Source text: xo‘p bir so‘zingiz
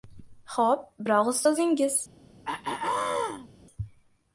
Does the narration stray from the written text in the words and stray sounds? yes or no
yes